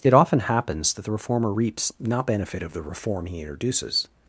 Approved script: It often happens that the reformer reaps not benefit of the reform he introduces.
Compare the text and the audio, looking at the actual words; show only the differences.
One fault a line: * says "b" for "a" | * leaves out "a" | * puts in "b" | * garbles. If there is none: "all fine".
all fine